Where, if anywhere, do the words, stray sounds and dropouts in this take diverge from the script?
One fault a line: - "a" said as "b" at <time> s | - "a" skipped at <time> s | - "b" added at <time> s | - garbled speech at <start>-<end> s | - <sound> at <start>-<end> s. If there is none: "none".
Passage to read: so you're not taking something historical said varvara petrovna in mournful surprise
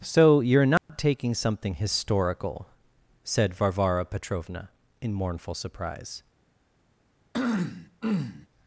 - dropout at 0.8-0.9 s
- throat clearing at 7.3-8.5 s